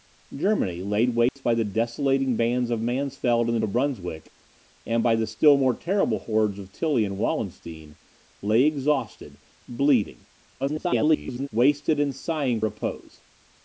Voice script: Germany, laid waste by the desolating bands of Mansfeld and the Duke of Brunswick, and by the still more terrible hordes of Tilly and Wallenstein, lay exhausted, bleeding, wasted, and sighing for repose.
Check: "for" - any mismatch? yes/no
yes